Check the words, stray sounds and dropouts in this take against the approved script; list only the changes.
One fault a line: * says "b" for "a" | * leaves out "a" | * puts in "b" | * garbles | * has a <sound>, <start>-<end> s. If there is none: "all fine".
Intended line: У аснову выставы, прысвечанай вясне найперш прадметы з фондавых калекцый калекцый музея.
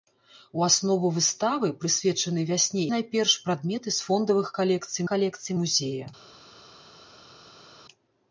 all fine